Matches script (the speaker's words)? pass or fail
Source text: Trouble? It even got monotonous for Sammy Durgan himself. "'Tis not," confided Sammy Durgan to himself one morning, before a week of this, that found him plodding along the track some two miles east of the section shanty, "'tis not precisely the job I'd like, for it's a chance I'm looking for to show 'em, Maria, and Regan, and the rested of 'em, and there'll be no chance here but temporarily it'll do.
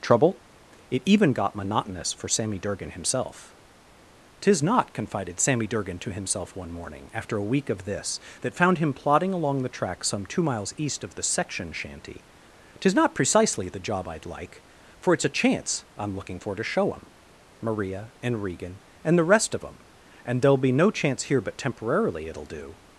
fail